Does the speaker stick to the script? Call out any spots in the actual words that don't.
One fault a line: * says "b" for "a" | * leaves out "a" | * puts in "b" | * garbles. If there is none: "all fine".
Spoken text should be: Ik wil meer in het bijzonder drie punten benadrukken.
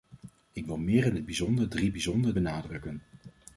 * says "bijzonder" for "punten"